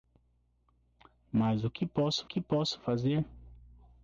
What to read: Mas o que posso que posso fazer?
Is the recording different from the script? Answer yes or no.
no